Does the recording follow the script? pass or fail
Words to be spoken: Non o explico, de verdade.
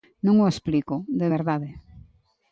pass